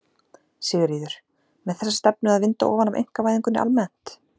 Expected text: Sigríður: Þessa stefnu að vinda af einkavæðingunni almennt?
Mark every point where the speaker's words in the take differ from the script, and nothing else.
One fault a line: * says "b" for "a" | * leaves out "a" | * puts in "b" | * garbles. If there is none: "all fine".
* puts in "Með"
* puts in "ofan"